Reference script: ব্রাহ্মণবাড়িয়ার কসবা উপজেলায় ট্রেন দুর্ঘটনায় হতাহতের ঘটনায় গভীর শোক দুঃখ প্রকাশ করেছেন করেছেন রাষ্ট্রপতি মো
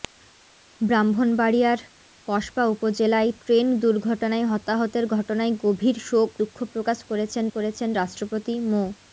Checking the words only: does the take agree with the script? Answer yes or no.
yes